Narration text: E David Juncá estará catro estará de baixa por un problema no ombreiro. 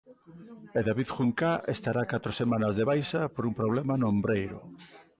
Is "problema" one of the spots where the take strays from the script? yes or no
no